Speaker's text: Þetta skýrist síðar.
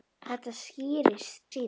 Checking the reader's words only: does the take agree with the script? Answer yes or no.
yes